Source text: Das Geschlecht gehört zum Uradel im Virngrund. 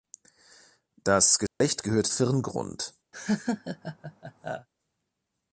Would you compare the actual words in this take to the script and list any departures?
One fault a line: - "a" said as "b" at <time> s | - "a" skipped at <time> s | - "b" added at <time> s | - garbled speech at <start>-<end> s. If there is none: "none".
- "zum Uradel im" skipped at 2.1 s